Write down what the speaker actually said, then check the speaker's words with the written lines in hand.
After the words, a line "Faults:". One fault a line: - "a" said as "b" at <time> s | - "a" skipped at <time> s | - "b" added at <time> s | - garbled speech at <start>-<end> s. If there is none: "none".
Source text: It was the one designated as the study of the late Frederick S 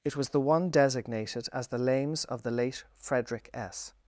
It was the one designated as the lames of the late Frederick S
Faults:
- "study" said as "lames" at 1.8 s